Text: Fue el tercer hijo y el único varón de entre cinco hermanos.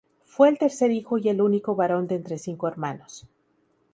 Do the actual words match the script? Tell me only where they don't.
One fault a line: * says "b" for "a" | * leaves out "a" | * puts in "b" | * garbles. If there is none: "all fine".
all fine